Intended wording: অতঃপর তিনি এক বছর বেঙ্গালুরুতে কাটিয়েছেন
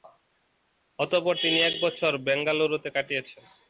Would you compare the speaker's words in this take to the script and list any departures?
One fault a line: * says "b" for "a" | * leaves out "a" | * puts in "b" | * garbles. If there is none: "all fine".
all fine